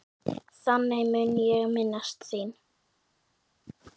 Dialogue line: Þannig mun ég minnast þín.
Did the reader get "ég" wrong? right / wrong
right